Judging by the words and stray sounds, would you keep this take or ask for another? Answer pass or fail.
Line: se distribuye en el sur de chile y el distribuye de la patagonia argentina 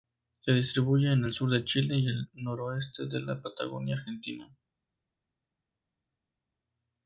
fail